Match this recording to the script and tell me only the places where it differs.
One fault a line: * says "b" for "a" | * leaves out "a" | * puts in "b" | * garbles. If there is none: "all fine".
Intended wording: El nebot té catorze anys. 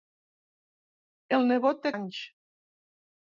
* leaves out "catorze"